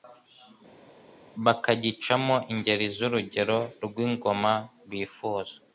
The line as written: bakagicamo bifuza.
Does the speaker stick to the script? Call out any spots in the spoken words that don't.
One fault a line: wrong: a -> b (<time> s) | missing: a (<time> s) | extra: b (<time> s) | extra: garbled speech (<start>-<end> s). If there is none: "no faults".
extra: ingeri z'urugero rw'ingoma (2.5 s)